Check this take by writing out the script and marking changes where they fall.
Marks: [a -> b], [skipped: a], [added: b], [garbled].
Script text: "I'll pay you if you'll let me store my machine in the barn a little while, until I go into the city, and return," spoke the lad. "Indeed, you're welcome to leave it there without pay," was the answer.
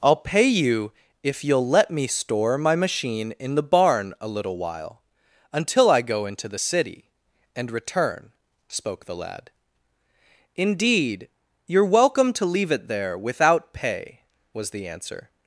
"I'll pay you if you'll let me store my machine in the barn a little while, until I go into the city, and return," spoke the lad. "Indeed, you're welcome to leave it there without pay," was the answer.